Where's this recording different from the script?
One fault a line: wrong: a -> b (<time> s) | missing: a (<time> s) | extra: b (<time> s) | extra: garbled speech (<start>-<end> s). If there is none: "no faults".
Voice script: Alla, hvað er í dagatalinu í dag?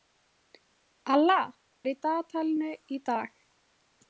missing: hvað (1.4 s)